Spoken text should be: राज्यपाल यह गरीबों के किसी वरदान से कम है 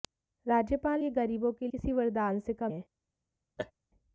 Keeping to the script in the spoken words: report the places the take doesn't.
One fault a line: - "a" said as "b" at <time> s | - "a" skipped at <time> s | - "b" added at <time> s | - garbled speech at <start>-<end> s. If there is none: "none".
none